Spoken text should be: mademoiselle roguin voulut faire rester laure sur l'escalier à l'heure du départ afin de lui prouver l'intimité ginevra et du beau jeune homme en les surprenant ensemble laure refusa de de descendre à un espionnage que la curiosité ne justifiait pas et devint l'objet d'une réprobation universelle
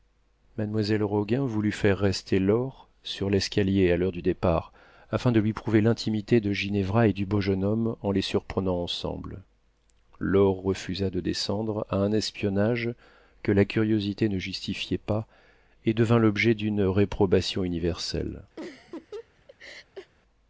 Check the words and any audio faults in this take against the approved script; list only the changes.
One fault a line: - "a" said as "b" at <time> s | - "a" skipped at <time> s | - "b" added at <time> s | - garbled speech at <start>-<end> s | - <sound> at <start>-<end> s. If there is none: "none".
- "de" added at 6.4 s
- "de" skipped at 11.2 s
- laugh at 18.6-20.1 s